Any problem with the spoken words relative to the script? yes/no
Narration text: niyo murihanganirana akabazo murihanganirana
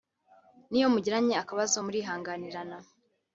yes